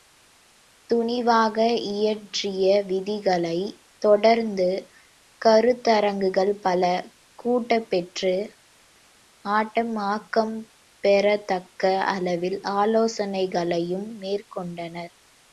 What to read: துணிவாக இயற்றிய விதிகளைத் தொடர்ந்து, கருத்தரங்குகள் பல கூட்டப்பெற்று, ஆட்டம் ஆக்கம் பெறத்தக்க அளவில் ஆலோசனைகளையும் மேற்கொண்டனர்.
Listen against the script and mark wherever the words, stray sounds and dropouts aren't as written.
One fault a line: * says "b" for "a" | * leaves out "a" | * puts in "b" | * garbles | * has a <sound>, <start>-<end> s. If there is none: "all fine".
all fine